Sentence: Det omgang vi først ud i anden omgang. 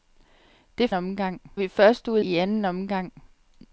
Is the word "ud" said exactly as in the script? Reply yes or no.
yes